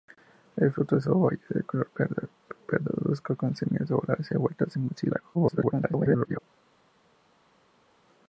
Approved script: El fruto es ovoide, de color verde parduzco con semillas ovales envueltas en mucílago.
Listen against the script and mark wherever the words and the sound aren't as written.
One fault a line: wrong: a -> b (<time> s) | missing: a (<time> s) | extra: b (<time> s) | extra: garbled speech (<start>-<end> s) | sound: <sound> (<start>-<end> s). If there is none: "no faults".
extra: garbled speech (5.3-6.4 s)